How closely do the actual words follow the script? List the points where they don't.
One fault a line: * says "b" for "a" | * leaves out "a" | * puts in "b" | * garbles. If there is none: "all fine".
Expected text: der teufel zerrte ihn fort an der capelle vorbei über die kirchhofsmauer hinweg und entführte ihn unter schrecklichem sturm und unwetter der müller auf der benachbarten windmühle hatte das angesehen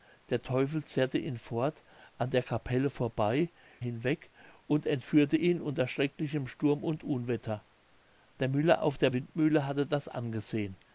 * leaves out "über die kirchhofsmauer"
* leaves out "benachbarten"